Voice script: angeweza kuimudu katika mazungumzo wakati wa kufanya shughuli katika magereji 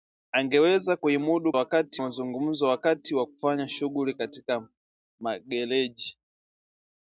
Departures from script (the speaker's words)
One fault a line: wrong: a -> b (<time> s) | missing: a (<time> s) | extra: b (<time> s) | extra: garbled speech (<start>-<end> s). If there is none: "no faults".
wrong: katika -> wakati (1.6 s)